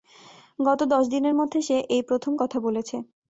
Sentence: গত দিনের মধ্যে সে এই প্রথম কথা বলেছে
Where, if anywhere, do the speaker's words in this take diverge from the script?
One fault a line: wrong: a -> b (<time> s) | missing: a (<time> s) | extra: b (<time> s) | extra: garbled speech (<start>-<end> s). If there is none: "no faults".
extra: দশ (0.9 s)